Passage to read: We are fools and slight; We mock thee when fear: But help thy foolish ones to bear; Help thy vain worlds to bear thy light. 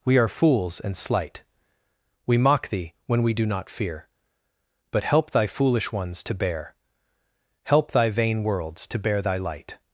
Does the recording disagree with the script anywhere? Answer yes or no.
yes